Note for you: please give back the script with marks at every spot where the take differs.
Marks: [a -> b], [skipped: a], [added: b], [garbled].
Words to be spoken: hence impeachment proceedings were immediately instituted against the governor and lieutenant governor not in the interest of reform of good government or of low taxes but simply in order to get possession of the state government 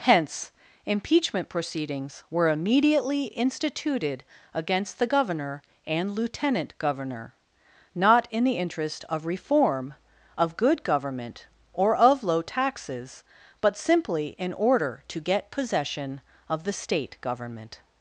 hence impeachment proceedings were immediately instituted against the governor and lieutenant governor not in the interest of reform of good government or of low taxes but simply in order to get possession of the state government